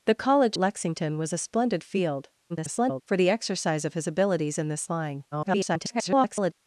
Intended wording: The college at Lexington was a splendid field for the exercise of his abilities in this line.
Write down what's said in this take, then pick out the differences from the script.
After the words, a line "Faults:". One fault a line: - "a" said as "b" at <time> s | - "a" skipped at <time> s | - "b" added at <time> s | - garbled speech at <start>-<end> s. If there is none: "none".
The college Lexington was a splendid field [garbled] for the exercise of his abilities in this line. [garbled]
Faults:
- "at" skipped at 0.6 s
- garbled speech at 2.5-3.0 s
- garbled speech at 5.3-6.5 s